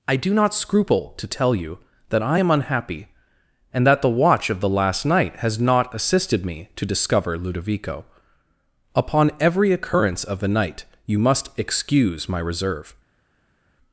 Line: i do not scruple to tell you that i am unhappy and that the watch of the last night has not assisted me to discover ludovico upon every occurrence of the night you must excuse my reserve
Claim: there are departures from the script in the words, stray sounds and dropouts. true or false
false